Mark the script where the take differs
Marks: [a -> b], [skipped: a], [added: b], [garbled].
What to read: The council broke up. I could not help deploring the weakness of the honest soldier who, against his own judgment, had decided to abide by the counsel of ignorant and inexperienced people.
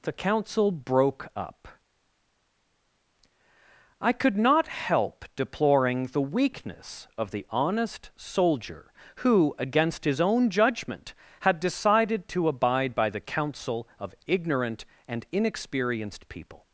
The council broke up. I could not help deploring the weakness of the honest soldier who, against his own judgment, had decided to abide by the counsel of ignorant and inexperienced people.